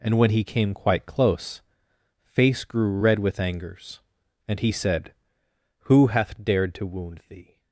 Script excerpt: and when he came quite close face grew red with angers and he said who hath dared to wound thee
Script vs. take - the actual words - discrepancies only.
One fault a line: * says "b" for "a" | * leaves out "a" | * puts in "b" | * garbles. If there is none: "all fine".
all fine